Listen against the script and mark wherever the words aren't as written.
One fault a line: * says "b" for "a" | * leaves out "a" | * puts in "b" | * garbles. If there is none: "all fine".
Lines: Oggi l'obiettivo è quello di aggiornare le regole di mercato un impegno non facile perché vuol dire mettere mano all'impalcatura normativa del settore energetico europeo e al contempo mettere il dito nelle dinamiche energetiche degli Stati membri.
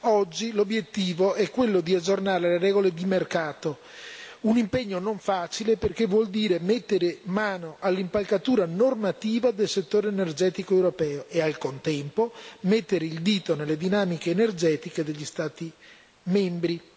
all fine